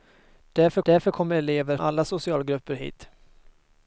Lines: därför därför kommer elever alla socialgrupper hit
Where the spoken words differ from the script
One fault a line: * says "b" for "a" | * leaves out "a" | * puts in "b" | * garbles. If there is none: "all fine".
all fine